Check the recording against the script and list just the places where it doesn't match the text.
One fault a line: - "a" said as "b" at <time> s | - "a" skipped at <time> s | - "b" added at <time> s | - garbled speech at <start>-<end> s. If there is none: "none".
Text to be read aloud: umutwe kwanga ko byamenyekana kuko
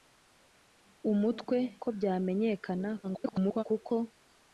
- "kwanga" skipped at 1.6 s
- garbled speech at 3.0-3.6 s